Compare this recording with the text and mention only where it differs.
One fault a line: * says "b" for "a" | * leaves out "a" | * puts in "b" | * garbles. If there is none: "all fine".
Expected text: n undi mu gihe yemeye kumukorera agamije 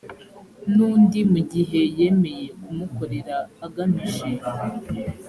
all fine